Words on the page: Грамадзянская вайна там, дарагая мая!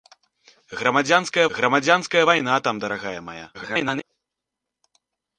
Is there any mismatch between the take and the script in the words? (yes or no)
yes